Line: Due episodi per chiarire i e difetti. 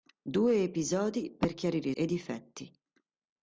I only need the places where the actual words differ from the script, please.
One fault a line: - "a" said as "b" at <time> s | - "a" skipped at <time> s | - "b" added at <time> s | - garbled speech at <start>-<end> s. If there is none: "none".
none